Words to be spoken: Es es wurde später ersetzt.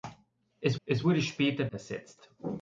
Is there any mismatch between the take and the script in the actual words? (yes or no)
no